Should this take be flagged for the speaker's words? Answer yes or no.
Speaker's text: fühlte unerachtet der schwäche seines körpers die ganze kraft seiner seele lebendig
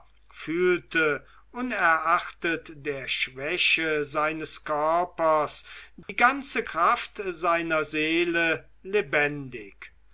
no